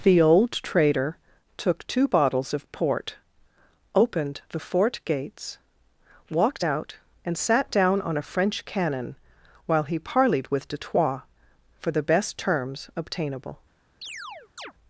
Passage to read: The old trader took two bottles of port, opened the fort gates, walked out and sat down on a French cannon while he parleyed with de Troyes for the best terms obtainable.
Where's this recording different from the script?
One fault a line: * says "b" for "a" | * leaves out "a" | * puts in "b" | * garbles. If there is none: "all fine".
all fine